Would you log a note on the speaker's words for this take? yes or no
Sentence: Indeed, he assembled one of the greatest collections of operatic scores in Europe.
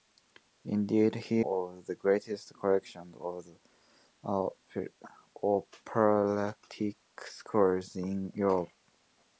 yes